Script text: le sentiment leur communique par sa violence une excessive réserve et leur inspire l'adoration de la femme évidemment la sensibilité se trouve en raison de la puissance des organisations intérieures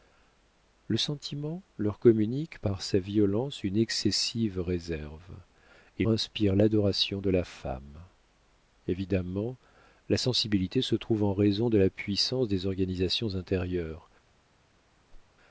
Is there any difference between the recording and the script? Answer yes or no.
yes